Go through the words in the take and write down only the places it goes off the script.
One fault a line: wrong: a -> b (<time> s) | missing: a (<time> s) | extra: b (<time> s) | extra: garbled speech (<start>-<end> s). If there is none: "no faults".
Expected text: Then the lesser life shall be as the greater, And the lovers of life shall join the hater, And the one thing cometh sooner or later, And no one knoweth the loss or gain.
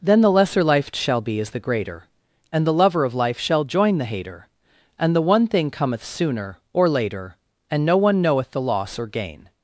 wrong: lovers -> lover (2.7 s)